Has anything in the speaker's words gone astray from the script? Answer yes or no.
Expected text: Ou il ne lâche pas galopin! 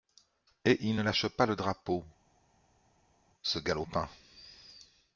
yes